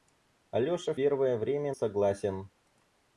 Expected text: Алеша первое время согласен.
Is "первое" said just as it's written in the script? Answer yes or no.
yes